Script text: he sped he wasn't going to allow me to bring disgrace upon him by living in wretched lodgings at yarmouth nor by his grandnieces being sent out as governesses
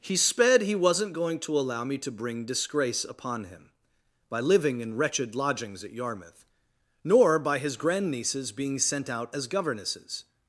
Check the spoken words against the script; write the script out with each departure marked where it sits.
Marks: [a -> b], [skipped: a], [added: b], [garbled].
he sped he wasn't going to allow me to bring disgrace upon him by living in wretched lodgings at yarmouth nor by his grandnieces being sent out as governesses